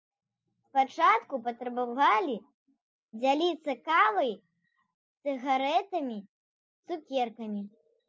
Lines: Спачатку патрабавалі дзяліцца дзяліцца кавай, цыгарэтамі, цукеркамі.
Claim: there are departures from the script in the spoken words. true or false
true